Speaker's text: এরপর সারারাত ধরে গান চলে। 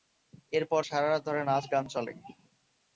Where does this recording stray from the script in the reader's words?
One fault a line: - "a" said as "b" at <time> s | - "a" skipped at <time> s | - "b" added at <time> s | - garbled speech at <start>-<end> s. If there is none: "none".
- "নাচ" added at 1.4 s